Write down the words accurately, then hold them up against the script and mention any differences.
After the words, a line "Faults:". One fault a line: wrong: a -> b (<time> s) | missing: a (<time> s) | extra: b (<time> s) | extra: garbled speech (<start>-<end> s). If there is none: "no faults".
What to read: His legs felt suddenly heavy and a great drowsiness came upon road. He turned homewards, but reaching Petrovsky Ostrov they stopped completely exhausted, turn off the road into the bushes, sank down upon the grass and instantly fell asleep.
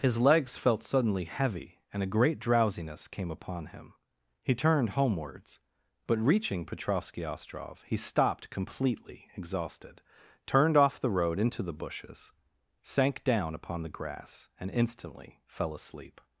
His legs felt suddenly heavy and a great drowsiness came upon him. He turned homewards, but reaching Petrovsky Ostrov he stopped completely exhausted, turned off the road into the bushes, sank down upon the grass and instantly fell asleep.
Faults:
wrong: road -> him (3.7 s)
wrong: they -> he (7.8 s)
wrong: turn -> turned (10.5 s)